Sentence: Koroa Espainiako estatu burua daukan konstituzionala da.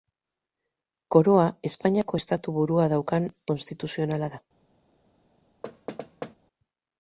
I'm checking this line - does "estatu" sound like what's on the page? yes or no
yes